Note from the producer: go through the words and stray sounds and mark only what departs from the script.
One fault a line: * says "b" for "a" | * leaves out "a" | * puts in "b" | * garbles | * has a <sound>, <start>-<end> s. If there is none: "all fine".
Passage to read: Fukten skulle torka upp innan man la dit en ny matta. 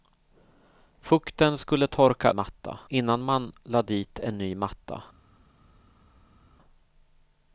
* says "matta" for "upp"